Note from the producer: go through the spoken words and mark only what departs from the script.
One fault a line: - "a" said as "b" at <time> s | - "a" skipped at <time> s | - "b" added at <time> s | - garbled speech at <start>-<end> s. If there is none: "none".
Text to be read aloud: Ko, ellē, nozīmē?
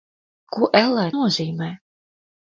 none